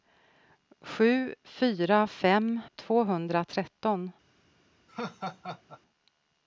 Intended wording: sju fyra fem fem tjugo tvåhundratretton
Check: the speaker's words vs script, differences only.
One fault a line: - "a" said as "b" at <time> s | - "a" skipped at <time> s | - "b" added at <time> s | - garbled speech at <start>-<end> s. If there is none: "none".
- "fem tjugo" skipped at 2.6 s